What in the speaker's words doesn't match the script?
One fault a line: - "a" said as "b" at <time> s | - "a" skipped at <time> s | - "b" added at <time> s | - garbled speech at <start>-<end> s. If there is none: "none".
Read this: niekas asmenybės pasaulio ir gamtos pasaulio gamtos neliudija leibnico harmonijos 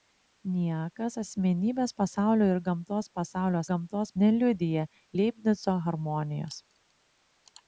none